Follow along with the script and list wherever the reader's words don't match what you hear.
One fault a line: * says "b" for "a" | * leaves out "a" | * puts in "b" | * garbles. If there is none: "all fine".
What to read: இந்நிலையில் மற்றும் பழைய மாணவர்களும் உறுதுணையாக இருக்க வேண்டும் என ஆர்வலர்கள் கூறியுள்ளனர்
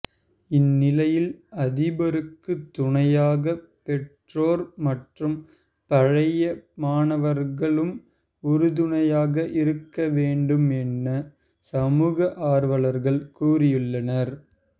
* puts in "அதிபருக்கு துணையாக பெற்றோர்"
* puts in "சமூக"